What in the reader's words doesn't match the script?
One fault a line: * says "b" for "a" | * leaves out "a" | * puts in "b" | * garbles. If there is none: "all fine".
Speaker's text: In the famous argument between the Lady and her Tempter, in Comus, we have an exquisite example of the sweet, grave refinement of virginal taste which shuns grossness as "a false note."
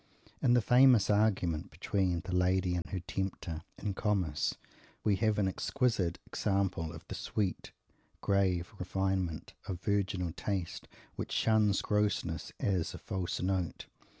all fine